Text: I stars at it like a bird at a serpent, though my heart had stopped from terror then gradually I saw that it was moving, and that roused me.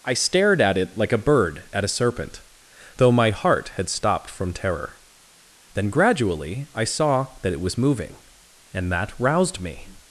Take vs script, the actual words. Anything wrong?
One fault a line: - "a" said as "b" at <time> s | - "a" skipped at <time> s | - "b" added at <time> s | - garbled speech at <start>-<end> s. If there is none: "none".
- "stars" said as "stared" at 0.1 s